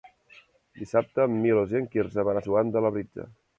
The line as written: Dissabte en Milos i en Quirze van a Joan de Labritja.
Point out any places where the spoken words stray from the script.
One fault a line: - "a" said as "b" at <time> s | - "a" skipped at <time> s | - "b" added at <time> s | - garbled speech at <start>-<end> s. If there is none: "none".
none